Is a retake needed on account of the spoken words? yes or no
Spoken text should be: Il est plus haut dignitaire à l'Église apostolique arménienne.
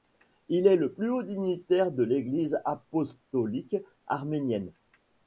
yes